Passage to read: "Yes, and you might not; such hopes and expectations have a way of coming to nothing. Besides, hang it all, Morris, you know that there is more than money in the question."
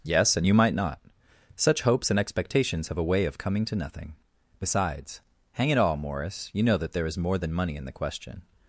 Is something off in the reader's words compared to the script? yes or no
no